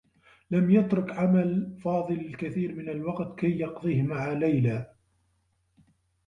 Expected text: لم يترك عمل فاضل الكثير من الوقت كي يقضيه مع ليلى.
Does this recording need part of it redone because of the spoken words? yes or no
no